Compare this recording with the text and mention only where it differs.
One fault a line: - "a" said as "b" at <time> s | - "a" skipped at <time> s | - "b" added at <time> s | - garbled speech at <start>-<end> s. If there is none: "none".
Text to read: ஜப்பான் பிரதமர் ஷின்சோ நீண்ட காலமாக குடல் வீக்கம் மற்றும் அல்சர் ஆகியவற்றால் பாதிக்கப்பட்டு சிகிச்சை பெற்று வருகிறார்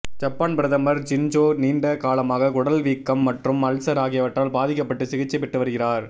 none